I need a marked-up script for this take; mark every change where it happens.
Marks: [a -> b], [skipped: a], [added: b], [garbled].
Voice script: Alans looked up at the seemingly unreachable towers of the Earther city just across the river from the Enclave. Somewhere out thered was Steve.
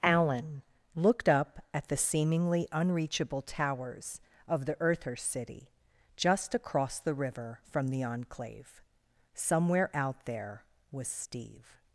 [Alans -> Alan] looked up at the seemingly unreachable towers of the Earther city just across the river from the Enclave. Somewhere out [thered -> there] was Steve.